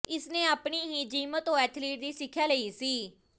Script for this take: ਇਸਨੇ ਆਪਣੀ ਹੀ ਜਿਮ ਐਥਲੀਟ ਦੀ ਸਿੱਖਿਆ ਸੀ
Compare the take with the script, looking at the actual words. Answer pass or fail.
fail